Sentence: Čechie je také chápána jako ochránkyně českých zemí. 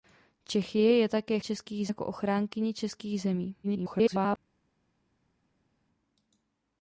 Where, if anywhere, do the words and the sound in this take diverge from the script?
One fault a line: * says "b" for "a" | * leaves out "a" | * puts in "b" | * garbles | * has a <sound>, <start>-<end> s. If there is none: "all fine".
* says "českých" for "chápána"
* garbles